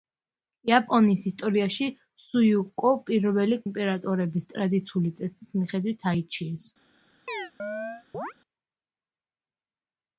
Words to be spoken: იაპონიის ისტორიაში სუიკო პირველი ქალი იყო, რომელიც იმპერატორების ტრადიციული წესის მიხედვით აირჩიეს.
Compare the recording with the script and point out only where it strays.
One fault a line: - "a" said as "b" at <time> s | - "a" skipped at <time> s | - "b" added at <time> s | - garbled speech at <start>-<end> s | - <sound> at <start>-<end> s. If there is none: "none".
- "ქალი იყო რომელიც" skipped at 3.6 s
- chirp at 7.3-8.3 s